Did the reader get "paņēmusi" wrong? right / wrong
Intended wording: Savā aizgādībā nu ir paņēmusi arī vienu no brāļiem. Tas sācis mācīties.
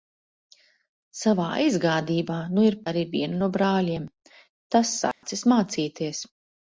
wrong